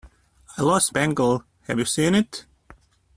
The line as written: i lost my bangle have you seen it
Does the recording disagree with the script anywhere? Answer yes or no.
yes